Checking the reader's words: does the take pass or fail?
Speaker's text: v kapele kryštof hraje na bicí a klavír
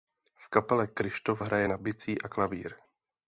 pass